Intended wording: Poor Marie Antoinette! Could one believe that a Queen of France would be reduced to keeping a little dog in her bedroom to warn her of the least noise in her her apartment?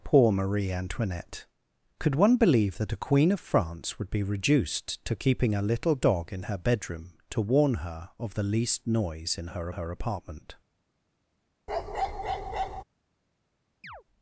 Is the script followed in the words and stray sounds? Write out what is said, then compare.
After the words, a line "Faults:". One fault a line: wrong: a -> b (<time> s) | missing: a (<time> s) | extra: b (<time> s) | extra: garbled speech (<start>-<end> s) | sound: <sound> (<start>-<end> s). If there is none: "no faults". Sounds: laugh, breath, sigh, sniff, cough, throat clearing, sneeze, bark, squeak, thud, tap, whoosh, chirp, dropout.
Poor Marie Antoinette! Could one believe that a Queen of France would be reduced to keeping a little dog in her bedroom to warn her of the least noise in her her apartment?
Faults:
sound: bark (11.7-12.8 s)
sound: chirp (13.8-14.0 s)